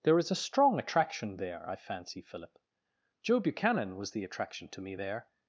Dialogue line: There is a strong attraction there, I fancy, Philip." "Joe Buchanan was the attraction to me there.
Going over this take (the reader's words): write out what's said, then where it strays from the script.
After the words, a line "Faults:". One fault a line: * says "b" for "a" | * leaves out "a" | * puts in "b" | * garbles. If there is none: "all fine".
There is a strong attraction there, I fancy, Philip." "Joe Buchanan was the attraction to me there.
Faults:
all fine